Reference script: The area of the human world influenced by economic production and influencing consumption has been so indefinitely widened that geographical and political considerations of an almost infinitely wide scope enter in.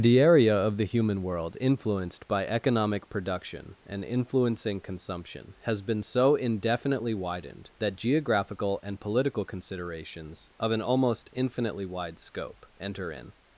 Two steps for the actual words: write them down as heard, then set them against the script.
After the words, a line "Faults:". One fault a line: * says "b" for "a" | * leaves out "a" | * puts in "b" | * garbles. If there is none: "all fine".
The area of the human world influenced by economic production and influencing consumption has been so indefinitely widened that geographical and political considerations of an almost infinitely wide scope enter in.
Faults:
all fine